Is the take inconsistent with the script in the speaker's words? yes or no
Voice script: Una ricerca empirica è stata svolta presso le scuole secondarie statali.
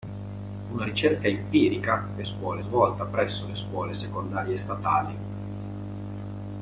yes